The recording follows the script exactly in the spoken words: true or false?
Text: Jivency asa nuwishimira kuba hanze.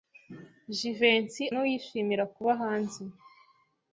false